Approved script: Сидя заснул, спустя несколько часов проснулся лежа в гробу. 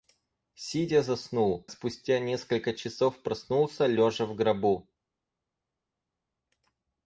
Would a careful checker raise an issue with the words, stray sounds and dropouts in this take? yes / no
no